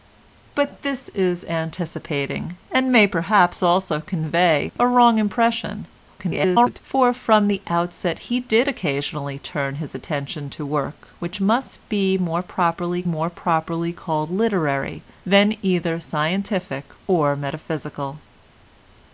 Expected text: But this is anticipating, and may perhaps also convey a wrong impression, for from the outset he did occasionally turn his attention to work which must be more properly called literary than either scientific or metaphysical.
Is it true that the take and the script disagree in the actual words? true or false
true